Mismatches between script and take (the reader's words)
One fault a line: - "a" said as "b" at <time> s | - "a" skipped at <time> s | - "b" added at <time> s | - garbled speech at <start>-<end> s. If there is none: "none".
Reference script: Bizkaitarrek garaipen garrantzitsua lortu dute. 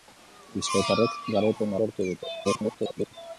- "garrantzitsua" skipped at 1.8 s
- garbled speech at 2.4-3.1 s